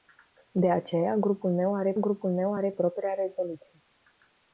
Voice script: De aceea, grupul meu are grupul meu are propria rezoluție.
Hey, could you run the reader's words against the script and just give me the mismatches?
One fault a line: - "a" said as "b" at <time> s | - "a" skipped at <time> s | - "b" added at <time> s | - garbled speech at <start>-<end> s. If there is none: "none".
none